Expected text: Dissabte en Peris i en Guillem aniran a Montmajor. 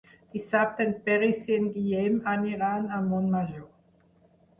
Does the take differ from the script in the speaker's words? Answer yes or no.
no